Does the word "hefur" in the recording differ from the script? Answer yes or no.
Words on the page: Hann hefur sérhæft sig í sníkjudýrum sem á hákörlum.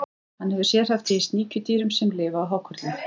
no